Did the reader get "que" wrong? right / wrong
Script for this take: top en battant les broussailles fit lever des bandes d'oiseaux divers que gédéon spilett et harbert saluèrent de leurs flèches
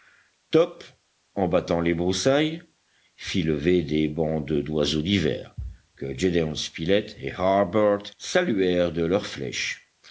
right